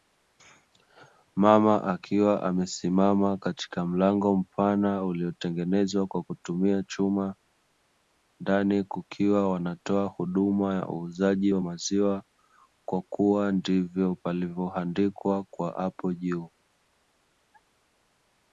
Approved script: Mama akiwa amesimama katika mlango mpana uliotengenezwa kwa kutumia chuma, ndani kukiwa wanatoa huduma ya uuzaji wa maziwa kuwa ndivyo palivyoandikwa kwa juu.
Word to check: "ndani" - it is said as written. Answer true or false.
true